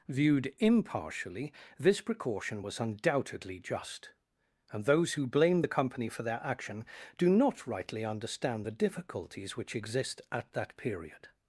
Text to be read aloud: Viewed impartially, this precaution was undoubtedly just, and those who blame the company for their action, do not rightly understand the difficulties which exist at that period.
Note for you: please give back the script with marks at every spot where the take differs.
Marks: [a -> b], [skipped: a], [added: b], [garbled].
Viewed impartially, this precaution was undoubtedly just, and those who blame the company for their action, do not rightly understand the difficulties which exist at that period.